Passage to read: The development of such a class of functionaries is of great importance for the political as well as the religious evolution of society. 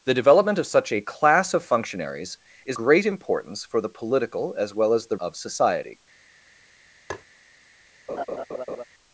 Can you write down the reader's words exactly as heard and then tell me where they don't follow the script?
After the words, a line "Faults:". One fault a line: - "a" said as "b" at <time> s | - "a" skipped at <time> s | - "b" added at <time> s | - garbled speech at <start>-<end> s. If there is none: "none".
The development of such a class of functionaries is great importance for the political as well as the of society.
Faults:
- "of" skipped at 2.8 s
- "religious evolution" skipped at 5.2 s